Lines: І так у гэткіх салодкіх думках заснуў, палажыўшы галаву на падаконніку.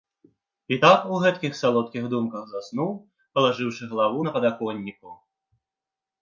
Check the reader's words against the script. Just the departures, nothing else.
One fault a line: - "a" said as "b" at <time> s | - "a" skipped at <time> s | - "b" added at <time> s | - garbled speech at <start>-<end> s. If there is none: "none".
none